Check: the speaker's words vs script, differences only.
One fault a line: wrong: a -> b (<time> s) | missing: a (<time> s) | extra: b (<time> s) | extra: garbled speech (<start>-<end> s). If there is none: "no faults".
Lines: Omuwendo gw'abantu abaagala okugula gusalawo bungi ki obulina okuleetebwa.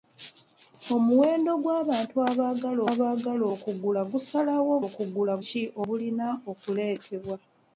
extra: abaagala (2.9 s)
wrong: bungi -> okugula (4.9 s)